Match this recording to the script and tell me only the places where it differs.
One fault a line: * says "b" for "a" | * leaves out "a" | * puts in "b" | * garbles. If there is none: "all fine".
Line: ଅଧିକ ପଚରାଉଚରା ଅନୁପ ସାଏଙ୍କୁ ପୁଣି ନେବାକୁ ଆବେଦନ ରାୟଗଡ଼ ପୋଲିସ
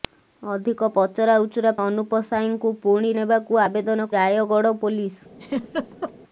all fine